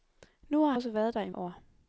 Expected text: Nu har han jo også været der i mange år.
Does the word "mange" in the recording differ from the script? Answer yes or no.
yes